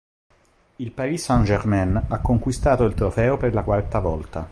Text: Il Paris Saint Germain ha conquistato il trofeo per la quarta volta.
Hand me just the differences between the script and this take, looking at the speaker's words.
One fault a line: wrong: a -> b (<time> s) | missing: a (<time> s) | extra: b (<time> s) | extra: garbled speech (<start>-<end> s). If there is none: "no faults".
no faults